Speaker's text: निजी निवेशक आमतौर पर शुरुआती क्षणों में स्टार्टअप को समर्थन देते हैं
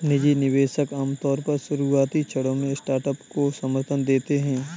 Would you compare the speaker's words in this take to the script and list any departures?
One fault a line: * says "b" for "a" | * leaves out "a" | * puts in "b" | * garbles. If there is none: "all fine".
all fine